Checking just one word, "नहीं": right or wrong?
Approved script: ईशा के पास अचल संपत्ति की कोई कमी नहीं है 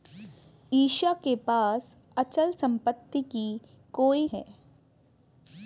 wrong